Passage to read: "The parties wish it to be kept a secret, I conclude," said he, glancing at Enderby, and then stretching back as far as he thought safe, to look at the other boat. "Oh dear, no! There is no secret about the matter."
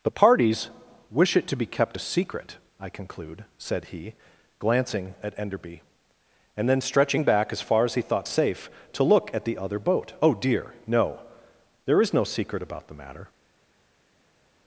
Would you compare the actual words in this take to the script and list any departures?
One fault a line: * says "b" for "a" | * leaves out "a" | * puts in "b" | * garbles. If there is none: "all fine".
all fine